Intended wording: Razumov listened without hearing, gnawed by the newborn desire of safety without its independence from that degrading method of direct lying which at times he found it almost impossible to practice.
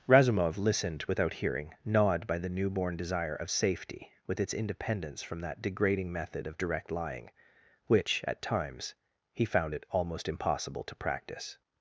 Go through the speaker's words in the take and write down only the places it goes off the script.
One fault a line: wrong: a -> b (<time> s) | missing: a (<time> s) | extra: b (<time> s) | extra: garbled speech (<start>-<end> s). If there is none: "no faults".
wrong: without -> with (4.3 s)